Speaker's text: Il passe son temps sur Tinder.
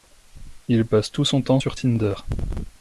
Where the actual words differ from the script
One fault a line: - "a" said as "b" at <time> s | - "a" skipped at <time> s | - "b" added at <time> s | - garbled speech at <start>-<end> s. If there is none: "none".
- "tout" added at 1.1 s